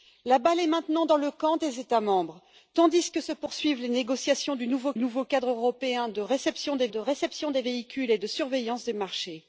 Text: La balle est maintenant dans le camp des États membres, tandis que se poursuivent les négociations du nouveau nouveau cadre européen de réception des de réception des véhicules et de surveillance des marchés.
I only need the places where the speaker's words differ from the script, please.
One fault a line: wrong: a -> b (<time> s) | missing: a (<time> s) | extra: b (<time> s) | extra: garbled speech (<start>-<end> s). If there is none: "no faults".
no faults